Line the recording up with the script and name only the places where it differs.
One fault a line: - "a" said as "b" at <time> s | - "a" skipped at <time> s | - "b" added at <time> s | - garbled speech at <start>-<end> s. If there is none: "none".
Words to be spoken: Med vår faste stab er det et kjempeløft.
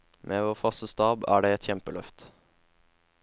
none